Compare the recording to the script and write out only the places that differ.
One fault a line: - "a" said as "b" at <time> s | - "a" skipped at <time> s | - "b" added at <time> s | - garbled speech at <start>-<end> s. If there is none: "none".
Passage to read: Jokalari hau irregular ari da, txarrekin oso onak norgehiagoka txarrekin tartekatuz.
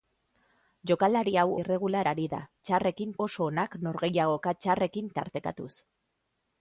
none